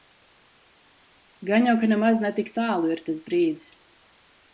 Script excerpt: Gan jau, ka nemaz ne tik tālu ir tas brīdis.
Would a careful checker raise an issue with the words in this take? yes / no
no